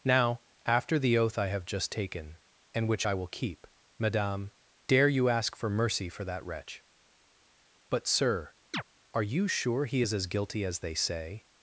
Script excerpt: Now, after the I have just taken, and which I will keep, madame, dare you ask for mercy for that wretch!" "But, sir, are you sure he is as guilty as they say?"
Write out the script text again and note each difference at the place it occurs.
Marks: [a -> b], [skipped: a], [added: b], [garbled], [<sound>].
Now, after the [added: oath] I have just taken, and which I will keep, madame, dare you ask for mercy for that wretch!" "But, sir, [chirp] are you sure he is as guilty as they say?"